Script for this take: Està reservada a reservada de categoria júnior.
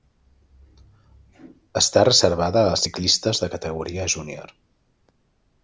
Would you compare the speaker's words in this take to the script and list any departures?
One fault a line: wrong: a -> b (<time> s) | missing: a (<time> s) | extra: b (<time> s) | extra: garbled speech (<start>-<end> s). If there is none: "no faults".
wrong: reservada -> ciclistes (2.8 s)